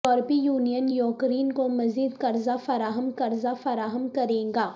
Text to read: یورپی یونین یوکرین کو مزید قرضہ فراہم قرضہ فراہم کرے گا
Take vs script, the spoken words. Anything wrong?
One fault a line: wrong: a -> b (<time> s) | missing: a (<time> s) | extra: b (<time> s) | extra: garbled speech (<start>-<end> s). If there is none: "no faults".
no faults